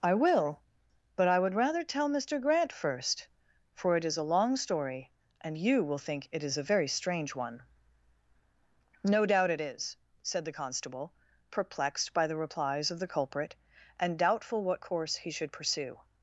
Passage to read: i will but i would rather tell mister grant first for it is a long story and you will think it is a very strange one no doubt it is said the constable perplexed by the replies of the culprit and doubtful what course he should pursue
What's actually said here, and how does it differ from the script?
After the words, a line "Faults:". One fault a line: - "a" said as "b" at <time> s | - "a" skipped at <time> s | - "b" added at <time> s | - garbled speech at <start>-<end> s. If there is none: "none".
i will but i would rather tell mister grant first for it is a long story and you will think it is a very strange one no doubt it is said the constable perplexed by the replies of the culprit and doubtful what course he should pursue
Faults:
none